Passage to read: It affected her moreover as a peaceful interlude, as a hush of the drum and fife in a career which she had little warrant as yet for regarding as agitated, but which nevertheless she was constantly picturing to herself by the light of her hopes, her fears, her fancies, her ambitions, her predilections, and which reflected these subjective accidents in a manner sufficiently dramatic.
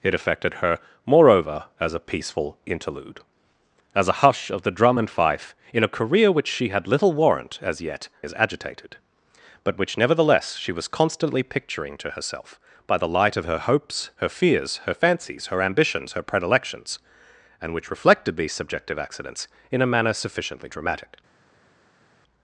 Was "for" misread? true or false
true